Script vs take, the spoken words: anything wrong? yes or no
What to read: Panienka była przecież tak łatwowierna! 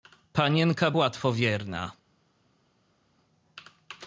yes